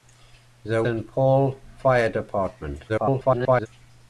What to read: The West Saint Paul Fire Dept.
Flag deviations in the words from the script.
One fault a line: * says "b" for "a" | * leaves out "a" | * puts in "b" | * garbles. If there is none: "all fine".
* leaves out "West"
* garbles